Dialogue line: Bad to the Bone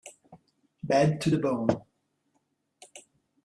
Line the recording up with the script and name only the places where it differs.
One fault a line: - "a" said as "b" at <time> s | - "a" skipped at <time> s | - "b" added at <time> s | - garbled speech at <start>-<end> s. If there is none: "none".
none